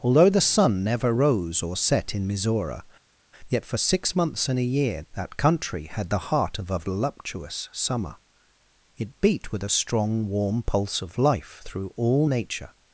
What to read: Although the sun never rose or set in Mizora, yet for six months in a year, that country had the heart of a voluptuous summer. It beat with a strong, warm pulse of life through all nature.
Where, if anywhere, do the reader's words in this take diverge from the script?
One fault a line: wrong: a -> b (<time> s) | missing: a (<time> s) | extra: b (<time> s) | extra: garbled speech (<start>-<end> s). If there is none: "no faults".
no faults